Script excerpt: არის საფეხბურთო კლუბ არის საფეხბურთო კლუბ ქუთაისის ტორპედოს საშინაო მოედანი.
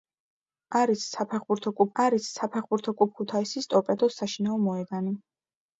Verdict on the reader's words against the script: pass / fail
pass